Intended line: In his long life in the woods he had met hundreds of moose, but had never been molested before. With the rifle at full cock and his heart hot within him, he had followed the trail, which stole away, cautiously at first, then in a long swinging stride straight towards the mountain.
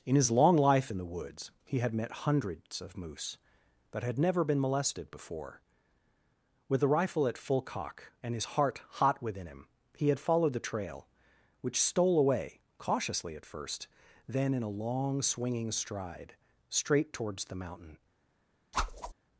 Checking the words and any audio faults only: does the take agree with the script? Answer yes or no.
no